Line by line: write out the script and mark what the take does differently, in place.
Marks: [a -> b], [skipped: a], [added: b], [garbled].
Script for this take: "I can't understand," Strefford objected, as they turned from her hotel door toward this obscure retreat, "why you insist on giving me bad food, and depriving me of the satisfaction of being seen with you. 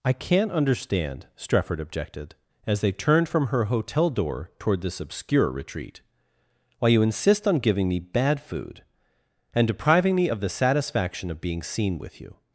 "I can't understand," Strefford objected, as they turned from her hotel door toward this obscure retreat, "why you insist on giving me bad food, and depriving me of the satisfaction of being seen with you.